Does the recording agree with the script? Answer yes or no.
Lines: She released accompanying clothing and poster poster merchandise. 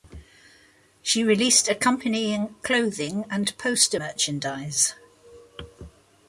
no